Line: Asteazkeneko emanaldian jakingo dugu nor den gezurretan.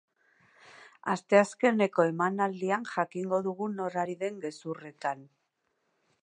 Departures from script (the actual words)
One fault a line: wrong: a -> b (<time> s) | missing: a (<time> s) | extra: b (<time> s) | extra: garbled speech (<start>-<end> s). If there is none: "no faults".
extra: ari (4.0 s)